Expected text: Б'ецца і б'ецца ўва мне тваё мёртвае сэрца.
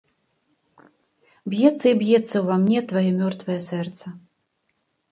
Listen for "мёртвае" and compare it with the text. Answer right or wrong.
right